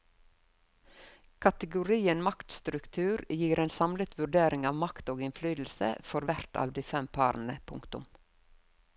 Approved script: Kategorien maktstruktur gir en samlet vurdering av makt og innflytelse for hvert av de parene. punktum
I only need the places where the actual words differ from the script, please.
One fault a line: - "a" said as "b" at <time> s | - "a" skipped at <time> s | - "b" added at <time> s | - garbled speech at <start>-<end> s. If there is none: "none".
- "fem" added at 6.9 s